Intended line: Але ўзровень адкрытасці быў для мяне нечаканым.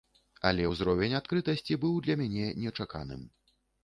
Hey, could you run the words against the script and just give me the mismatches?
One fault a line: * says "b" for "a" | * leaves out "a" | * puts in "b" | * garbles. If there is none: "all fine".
all fine